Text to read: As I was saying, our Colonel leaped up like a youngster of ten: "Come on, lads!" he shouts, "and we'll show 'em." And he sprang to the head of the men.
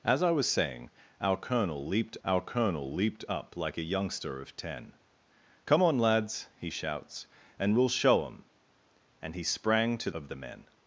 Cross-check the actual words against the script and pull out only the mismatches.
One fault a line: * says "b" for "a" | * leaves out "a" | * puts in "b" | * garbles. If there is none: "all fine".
* puts in "our Colonel leaped"
* leaves out "the head"